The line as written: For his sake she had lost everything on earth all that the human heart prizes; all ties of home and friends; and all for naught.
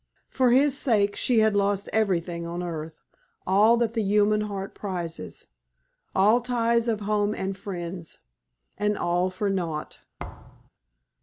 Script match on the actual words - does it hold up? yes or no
yes